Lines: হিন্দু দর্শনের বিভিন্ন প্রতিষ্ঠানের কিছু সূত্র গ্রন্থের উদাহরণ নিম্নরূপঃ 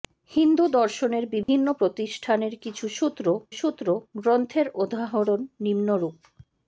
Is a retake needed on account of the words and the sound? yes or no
yes